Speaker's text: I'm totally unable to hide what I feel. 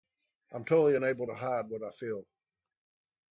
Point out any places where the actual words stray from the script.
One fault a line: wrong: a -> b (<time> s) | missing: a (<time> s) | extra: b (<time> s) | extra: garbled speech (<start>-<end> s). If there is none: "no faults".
no faults